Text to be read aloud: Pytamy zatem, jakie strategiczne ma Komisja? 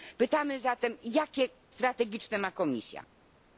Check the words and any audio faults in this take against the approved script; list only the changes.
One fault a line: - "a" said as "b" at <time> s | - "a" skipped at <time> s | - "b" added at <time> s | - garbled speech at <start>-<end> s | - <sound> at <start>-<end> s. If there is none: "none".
none